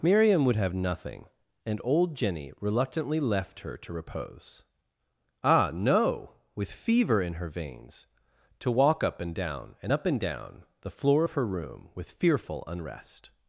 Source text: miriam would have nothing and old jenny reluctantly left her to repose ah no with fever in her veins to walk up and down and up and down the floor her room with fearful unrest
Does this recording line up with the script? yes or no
no